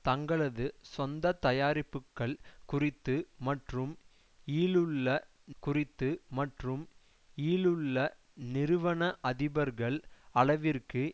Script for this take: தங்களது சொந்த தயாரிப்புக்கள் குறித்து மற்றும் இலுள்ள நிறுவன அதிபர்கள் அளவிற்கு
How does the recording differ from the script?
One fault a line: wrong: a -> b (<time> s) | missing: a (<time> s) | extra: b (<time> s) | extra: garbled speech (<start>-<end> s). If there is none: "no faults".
extra: குறித்து மற்றும் இலுள்ள (5.6 s)